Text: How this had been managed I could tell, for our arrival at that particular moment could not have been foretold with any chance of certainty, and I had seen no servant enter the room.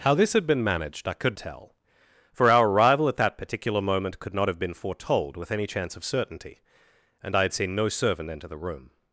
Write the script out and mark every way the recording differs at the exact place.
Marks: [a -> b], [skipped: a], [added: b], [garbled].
How this had been managed I could tell, for our arrival at that particular moment could not have been foretold with any chance of certainty, and I had seen no servant enter the room.